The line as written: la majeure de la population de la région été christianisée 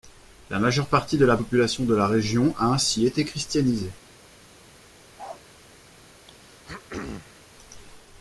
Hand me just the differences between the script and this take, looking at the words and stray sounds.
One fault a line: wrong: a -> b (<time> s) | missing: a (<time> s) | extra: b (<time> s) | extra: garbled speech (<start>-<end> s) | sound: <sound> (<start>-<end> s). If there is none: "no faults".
extra: partie (0.9 s)
extra: a ainsi (2.6 s)
sound: bark (5.2-5.4 s)
sound: throat clearing (6.3-7.5 s)